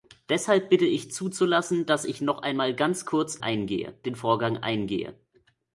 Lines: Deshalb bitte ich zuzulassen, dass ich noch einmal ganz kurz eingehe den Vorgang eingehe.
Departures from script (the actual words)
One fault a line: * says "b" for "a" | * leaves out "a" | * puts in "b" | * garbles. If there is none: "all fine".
all fine